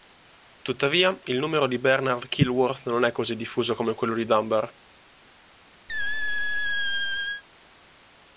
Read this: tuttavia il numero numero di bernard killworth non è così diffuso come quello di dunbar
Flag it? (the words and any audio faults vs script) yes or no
yes